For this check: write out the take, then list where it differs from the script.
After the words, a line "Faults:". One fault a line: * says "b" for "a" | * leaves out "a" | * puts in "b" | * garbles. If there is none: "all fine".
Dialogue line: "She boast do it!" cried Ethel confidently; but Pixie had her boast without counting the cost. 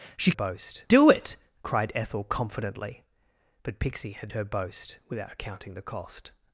"She boast do it!" cried Ethel confidently; but Pixie had her boast without counting the cost.
Faults:
all fine